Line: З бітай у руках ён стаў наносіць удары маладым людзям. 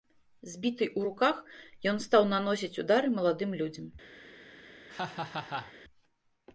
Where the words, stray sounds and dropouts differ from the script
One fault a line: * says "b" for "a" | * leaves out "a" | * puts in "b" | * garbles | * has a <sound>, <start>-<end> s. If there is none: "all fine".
* has a laugh, 4.9-5.7 s